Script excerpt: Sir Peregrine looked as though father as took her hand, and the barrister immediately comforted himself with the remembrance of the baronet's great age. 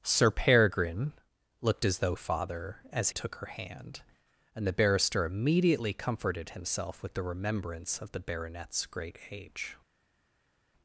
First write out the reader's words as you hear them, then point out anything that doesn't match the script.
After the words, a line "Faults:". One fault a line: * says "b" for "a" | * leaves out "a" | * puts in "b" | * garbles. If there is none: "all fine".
Sir Peregrine looked as though father as took her hand, and the barrister immediately comforted himself with the remembrance of the baronet's great age.
Faults:
all fine